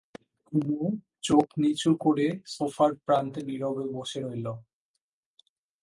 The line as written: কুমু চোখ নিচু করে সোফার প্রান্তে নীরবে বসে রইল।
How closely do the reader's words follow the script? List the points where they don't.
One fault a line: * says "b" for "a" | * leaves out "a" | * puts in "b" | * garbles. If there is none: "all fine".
all fine